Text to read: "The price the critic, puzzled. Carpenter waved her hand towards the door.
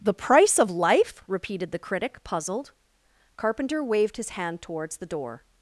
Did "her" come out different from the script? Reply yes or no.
yes